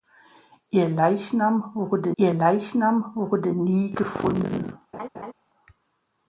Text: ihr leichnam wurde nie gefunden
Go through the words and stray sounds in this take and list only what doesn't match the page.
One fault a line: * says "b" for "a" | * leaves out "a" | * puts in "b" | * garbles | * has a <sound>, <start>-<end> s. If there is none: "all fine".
* puts in "ihr leichnam wurde"
* has a laugh, 4.9-5.3 s